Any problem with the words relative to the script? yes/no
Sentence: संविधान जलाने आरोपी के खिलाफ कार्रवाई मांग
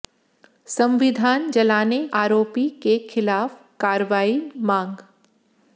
no